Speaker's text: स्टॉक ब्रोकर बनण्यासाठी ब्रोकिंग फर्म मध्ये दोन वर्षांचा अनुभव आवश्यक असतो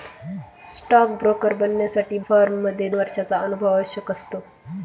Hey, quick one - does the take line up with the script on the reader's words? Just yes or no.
no